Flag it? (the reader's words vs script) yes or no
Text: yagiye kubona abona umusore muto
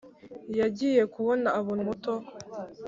yes